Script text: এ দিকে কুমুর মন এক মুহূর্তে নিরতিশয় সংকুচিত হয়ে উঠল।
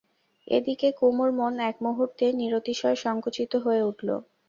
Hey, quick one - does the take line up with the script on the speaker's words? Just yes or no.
yes